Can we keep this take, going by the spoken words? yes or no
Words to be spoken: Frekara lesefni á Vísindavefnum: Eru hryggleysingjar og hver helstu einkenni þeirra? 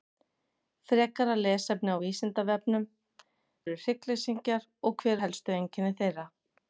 yes